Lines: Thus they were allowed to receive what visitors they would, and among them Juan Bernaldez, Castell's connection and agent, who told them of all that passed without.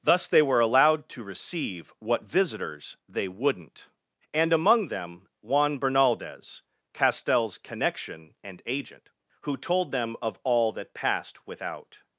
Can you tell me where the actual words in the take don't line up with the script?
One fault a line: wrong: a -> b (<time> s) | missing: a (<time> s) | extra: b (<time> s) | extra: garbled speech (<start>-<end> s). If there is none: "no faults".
wrong: would -> wouldn't (3.3 s)